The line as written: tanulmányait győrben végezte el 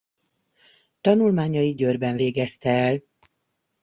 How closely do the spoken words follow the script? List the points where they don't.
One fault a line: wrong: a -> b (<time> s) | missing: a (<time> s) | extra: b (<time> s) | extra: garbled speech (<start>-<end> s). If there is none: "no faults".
no faults